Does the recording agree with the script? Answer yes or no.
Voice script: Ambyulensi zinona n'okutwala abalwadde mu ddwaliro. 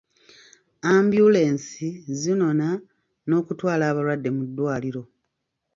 yes